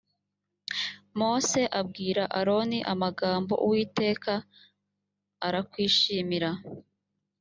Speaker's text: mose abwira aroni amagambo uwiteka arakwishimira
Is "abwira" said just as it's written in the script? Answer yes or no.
yes